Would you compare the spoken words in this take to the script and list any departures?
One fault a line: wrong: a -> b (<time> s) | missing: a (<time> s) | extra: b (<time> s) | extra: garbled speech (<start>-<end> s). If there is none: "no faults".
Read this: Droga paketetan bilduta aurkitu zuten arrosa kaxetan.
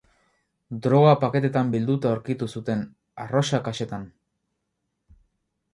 no faults